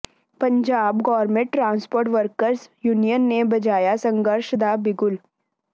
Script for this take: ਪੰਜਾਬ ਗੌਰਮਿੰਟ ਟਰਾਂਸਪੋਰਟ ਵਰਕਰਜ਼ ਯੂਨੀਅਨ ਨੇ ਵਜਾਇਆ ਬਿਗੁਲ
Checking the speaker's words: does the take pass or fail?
fail